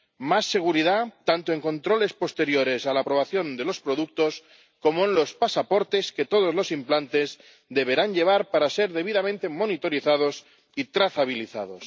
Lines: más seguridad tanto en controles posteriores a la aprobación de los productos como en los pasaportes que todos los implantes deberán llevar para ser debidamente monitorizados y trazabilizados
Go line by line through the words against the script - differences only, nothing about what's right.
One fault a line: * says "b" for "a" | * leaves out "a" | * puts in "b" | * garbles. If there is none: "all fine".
all fine